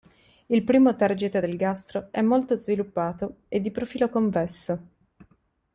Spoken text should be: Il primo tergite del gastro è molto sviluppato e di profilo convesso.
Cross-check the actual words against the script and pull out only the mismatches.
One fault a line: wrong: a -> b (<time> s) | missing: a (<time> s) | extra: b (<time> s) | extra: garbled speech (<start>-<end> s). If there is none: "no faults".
no faults